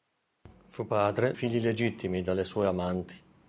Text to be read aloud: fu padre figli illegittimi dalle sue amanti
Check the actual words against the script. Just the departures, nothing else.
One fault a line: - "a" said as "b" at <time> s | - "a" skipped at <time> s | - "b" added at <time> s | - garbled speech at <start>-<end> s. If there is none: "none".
none